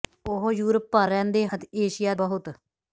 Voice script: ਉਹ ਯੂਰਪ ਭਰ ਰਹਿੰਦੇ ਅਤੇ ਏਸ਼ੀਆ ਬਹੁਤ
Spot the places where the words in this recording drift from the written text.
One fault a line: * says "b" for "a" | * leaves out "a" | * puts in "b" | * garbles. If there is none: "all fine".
all fine